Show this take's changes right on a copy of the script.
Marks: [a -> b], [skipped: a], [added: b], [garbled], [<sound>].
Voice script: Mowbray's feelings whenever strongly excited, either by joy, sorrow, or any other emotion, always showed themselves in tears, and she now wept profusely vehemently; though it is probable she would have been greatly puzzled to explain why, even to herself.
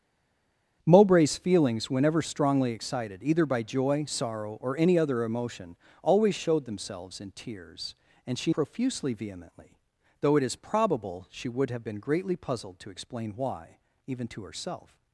Mowbray's feelings whenever strongly excited, either by joy, sorrow, or any other emotion, always showed themselves in tears, and she [skipped: now wept] profusely vehemently; though it is probable she would have been greatly puzzled to explain why, even to herself.